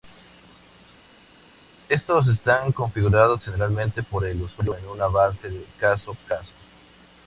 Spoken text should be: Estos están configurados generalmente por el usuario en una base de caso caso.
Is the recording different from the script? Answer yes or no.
no